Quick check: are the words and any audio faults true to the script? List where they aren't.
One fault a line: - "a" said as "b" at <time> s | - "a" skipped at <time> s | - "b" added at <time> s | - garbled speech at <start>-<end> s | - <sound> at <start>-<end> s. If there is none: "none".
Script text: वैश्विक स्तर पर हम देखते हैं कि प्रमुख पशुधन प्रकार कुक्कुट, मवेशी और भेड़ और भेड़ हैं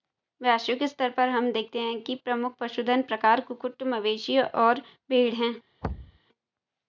- "और भेड़" skipped at 5.3 s
- thud at 5.8-6.2 s